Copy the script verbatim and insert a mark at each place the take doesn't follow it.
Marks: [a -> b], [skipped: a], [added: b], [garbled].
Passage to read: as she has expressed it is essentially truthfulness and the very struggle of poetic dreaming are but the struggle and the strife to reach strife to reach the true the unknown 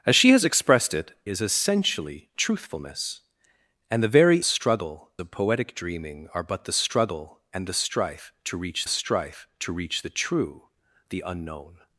as she has expressed it is essentially truthfulness and the very struggle of poetic dreaming are but the struggle and the strife to reach strife to reach the true the unknown